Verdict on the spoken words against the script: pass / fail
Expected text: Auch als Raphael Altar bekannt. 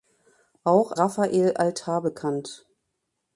fail